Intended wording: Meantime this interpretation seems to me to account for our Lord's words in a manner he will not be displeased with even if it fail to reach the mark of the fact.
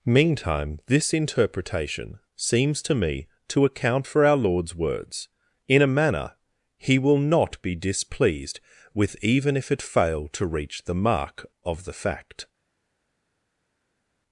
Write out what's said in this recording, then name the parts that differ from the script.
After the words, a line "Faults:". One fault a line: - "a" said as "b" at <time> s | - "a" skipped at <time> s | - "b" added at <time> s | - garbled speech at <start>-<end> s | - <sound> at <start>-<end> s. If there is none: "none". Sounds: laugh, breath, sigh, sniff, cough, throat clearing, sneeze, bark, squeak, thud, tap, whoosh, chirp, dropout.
Meantime this interpretation seems to me to account for our Lord's words in a manner he will not be displeased with even if it fail to reach the mark of the fact.
Faults:
none